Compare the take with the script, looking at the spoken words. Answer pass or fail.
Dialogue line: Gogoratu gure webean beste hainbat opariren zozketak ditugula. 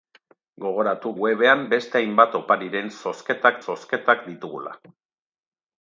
fail